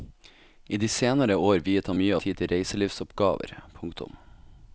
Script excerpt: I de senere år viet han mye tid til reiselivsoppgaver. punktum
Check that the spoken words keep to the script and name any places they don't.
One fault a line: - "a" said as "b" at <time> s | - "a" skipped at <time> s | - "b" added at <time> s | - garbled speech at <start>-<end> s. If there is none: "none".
none